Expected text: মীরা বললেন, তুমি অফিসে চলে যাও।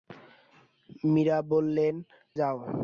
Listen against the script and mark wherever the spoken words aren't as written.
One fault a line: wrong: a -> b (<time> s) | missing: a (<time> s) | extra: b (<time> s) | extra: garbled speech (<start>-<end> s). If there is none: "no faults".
missing: তুমি অফিসে চলে (1.9 s)